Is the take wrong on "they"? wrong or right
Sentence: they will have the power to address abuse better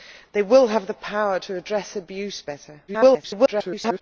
right